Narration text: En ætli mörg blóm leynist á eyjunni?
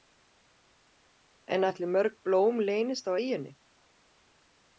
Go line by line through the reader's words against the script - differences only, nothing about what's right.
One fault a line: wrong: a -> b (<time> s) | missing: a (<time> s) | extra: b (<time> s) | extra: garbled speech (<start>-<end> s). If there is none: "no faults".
no faults